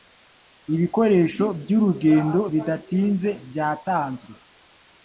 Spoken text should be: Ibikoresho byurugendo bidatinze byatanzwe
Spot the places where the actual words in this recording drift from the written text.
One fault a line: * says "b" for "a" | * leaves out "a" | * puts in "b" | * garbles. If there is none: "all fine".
all fine